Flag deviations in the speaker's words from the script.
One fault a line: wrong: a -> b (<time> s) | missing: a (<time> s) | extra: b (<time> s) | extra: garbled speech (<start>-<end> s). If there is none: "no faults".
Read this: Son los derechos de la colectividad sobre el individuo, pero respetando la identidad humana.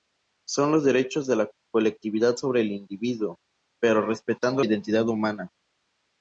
missing: la (4.6 s)